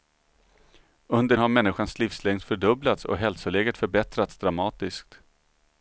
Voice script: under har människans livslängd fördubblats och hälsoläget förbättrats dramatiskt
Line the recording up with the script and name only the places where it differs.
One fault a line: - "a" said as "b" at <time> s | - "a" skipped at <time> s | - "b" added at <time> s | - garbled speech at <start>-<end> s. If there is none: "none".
none